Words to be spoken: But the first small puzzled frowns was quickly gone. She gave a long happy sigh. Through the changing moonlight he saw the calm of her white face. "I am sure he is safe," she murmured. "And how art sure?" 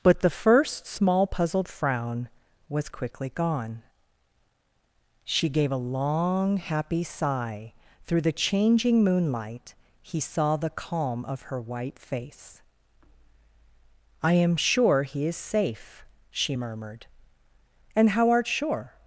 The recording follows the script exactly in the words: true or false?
false